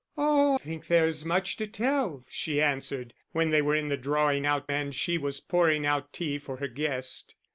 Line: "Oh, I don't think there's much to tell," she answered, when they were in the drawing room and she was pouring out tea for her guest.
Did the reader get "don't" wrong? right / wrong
wrong